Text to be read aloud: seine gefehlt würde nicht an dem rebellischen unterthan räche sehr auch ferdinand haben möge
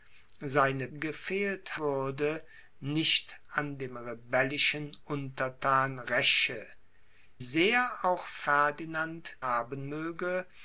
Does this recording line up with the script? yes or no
yes